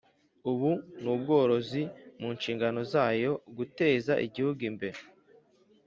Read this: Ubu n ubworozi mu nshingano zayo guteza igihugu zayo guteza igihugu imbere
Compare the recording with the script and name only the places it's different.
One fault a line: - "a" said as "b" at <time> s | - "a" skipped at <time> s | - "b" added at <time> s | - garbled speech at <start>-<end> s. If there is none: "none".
- "zayo guteza igihugu" skipped at 4.6 s